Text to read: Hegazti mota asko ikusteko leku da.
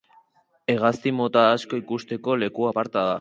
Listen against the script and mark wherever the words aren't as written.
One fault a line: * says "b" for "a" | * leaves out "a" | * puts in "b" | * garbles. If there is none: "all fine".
* puts in "aparta"